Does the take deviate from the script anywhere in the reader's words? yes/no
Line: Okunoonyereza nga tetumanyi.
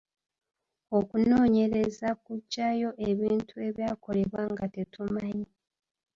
yes